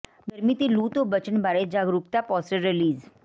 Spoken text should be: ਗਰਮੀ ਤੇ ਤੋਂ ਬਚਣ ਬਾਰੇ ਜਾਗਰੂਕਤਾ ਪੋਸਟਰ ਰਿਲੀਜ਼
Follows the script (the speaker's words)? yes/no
no